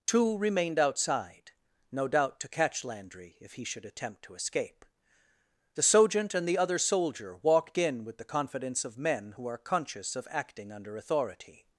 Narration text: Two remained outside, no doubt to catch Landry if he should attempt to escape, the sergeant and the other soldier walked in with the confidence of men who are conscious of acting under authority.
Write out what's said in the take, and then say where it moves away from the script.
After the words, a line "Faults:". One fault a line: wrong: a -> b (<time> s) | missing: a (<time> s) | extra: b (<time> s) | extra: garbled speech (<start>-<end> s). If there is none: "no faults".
Two remained outside, no doubt to catch Landry if he should attempt to escape, the sergeant and the other soldier walked in with the confidence of men who are conscious of acting under authority.
Faults:
no faults